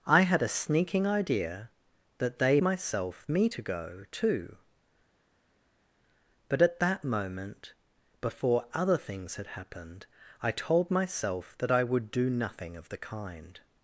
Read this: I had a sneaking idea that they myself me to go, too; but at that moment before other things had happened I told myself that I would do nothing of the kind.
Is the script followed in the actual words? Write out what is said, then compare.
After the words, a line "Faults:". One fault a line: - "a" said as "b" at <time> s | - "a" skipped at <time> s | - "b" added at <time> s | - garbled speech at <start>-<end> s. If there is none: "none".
I had a sneaking idea that they myself me to go, too; but at that moment before other things had happened I told myself that I would do nothing of the kind.
Faults:
none